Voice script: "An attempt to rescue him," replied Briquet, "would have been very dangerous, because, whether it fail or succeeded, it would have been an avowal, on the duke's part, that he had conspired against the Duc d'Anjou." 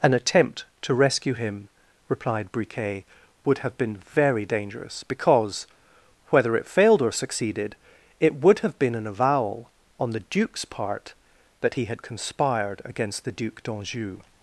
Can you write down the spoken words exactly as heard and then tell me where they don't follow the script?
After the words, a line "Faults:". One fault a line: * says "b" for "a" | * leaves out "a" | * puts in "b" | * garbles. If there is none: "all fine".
"An attempt to rescue him," replied Briquet, "would have been very dangerous, because, whether it failed or succeeded, it would have been an avowal, on the duke's part, that he had conspired against the Duc d'Anjou."
Faults:
* says "failed" for "fail"